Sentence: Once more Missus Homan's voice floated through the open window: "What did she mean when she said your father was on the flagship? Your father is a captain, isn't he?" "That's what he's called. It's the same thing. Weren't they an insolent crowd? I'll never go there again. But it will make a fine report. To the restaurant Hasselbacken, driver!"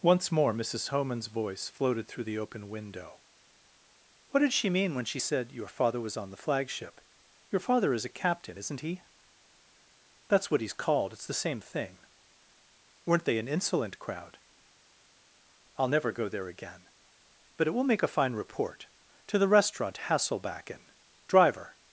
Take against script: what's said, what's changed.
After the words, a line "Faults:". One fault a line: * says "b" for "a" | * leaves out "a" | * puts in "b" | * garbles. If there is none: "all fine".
Once more Missus Homan's voice floated through the open window: "What did she mean when she said your father was on the flagship? Your father is a captain, isn't he?" "That's what he's called. It's the same thing. Weren't they an insolent crowd? I'll never go there again. But it will make a fine report. To the restaurant Hasselbacken, driver!"
Faults:
all fine